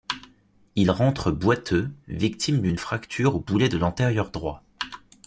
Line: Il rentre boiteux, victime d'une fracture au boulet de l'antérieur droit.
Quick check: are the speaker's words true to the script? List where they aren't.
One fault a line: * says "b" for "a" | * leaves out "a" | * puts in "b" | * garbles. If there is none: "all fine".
all fine